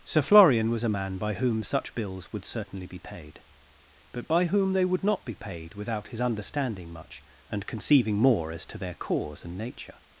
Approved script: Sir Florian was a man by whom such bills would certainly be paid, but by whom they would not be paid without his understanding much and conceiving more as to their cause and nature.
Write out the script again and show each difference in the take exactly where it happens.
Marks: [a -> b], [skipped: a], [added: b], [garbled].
Sir Florian was a man by whom such bills would certainly be paid, but by whom they would not be paid without his understanding much and conceiving more as to their cause and nature.